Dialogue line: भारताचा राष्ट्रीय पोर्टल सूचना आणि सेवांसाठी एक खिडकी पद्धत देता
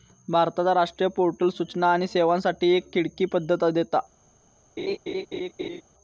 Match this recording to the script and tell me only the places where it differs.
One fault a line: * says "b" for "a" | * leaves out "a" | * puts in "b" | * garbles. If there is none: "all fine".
all fine